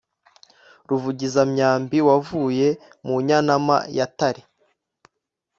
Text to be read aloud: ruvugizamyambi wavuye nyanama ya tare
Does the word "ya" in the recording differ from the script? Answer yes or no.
no